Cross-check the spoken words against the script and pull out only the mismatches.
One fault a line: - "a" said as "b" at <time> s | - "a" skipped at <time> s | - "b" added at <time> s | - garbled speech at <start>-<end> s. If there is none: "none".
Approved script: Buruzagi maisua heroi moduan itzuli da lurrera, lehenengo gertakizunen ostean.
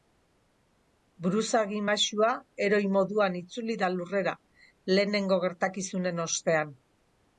none